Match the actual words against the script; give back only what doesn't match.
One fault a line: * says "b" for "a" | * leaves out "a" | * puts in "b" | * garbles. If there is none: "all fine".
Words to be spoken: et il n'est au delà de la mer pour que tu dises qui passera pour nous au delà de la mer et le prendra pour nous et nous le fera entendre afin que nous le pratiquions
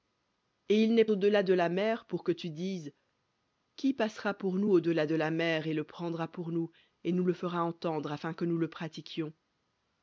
all fine